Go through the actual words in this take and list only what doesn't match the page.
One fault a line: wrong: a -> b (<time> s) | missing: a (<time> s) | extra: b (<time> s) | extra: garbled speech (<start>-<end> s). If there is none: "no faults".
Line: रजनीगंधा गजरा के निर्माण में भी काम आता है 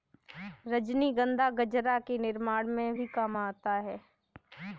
no faults